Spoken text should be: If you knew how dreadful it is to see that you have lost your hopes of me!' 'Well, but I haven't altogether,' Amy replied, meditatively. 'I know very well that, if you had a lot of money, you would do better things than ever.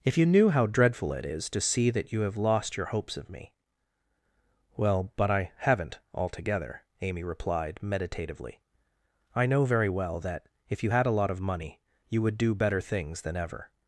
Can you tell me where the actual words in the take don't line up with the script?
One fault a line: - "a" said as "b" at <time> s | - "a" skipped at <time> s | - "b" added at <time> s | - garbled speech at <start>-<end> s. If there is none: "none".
none